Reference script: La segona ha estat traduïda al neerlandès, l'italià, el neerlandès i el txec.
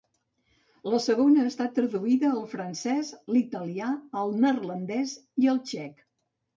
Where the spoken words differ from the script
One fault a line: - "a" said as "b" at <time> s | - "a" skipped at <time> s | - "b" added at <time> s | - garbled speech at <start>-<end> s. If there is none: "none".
- "neerlandès" said as "francès" at 2.5 s